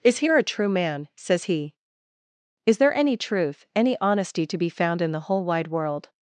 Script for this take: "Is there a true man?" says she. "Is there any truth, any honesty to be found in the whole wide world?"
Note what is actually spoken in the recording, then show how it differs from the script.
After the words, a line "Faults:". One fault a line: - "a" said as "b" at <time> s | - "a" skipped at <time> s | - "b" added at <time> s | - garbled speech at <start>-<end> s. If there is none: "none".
"Is here a true man?" says he. "Is there any truth, any honesty to be found in the whole wide world?"
Faults:
- "there" said as "here" at 0.2 s
- "she" said as "he" at 1.4 s